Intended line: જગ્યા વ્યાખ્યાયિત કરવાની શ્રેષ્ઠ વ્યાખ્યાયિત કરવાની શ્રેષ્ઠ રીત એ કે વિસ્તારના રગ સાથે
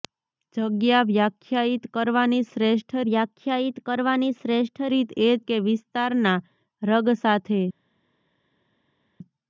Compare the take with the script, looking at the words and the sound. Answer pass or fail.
pass